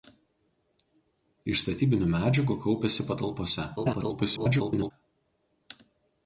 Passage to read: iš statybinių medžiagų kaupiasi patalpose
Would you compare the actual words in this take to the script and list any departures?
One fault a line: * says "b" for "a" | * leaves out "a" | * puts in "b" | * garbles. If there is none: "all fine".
* garbles